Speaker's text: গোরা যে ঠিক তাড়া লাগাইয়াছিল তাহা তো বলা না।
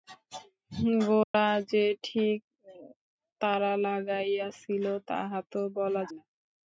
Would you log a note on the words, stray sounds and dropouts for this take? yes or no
yes